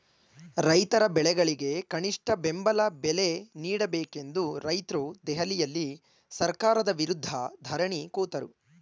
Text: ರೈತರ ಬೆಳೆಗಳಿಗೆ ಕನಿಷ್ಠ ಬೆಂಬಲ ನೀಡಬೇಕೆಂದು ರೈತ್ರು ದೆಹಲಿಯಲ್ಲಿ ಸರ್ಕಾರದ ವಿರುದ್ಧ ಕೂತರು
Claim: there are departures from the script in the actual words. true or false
true